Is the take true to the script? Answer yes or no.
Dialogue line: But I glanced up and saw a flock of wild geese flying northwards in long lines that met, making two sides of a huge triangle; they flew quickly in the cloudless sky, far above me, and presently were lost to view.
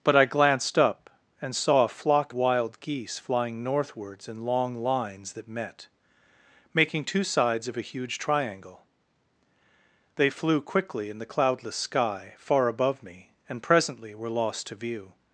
no